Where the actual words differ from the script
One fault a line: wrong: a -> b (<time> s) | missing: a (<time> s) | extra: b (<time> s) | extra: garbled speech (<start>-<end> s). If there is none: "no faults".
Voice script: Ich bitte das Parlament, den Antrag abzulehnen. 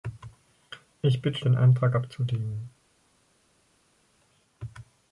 missing: das Parlament (1.4 s)